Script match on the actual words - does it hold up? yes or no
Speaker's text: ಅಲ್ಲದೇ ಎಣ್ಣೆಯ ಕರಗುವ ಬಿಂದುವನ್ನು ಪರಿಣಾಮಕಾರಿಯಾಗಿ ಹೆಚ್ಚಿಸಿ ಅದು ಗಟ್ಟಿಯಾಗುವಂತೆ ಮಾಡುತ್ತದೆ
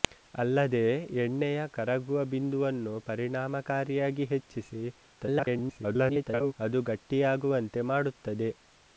no